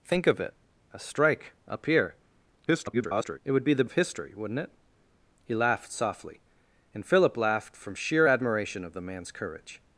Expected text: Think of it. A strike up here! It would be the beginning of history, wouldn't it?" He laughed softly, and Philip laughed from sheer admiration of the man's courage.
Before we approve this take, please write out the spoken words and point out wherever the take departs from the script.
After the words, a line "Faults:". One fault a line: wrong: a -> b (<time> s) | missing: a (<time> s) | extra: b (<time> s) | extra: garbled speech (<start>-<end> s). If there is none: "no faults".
Think of it. A strike up here! [garbled] It would be the of history, wouldn't it?" He laughed softly, and Philip laughed from sheer admiration of the man's courage.
Faults:
extra: garbled speech (2.7-3.4 s)
missing: beginning (3.8 s)